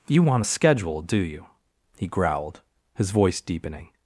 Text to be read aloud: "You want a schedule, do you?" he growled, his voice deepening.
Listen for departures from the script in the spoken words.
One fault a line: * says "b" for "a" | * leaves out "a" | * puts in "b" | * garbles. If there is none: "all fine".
all fine